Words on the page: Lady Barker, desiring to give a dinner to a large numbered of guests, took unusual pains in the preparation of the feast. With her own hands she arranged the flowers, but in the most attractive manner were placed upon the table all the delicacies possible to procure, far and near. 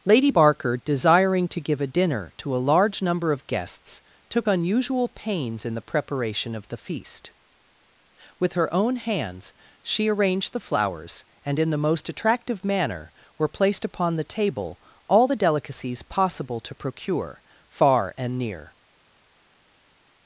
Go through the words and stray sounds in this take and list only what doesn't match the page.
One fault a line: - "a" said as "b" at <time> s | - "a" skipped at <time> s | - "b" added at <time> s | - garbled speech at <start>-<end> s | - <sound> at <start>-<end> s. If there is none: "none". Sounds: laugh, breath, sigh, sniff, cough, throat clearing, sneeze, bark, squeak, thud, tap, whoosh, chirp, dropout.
- "numbered" said as "number" at 3.0 s
- "but" said as "and" at 11.5 s